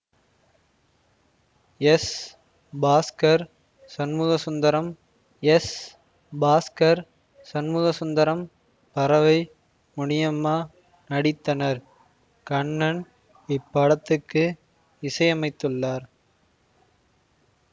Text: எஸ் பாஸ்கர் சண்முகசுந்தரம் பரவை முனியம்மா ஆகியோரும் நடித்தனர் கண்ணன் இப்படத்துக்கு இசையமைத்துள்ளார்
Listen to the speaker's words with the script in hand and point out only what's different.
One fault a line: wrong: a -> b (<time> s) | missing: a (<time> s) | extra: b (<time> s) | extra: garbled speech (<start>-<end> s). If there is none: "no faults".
extra: எஸ் பாஸ்கர் சண்முகசுந்தரம் (5.4 s)
missing: ஆகியோரும் (10.5 s)